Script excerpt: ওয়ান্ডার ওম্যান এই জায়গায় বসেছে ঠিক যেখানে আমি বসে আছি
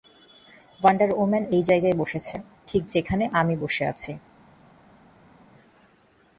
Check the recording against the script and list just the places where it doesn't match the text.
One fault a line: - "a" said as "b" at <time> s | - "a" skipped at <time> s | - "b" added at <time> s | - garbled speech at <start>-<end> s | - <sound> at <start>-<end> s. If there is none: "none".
none